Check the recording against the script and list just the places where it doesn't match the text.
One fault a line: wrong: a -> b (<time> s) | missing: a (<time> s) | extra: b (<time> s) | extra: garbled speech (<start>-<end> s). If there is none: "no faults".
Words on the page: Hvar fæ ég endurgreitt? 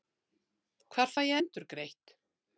no faults